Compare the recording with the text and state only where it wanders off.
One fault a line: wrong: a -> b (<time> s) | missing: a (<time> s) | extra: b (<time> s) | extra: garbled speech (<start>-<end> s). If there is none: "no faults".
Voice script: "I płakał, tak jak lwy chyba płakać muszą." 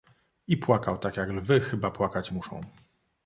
no faults